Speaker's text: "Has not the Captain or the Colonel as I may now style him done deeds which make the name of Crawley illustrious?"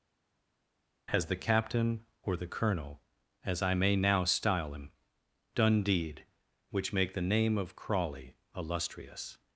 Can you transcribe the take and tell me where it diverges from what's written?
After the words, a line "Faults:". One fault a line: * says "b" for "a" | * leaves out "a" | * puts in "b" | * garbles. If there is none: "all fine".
"Has the Captain or the Colonel as I may now style him done deed which make the name of Crawley illustrious?"
Faults:
* leaves out "not"
* says "deed" for "deeds"